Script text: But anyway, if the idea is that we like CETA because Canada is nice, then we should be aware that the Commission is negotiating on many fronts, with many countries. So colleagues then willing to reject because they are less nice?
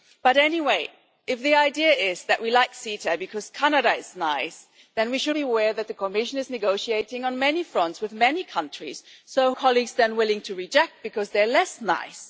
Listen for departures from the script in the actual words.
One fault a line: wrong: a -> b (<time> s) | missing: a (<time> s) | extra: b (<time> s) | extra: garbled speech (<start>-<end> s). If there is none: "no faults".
no faults